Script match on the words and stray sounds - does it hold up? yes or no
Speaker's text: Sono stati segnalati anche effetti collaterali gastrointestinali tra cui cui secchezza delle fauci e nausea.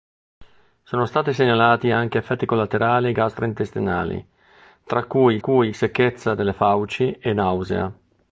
yes